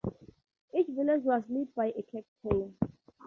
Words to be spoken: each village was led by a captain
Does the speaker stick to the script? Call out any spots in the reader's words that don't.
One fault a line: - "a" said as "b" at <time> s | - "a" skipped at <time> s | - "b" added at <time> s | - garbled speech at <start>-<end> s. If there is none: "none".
none